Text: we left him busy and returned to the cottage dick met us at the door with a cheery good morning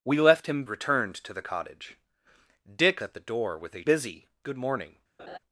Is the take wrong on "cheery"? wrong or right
wrong